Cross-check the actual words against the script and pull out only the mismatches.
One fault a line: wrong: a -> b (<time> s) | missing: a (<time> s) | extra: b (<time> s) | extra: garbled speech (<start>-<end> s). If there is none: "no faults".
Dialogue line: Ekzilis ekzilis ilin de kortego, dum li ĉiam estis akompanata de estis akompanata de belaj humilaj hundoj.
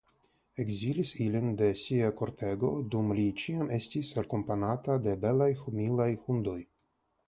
missing: ekzilis (1.1 s)
extra: sia (1.8 s)
missing: estis akompanata de (5.2 s)